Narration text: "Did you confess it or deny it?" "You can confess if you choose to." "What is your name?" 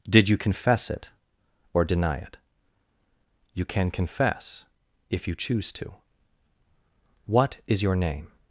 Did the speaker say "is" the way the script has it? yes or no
yes